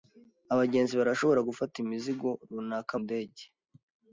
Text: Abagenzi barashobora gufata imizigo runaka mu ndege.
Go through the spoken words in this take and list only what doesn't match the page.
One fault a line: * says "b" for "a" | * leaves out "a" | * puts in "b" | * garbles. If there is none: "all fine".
* leaves out "mu"